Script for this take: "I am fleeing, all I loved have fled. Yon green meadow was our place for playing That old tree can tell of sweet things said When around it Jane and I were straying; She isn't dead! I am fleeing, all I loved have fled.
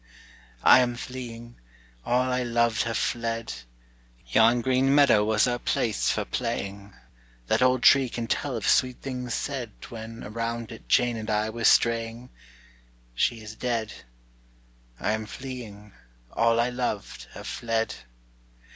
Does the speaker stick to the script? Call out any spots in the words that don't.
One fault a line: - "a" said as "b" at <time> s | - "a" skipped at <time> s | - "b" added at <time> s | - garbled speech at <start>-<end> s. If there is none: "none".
- "isn't" said as "is" at 13.4 s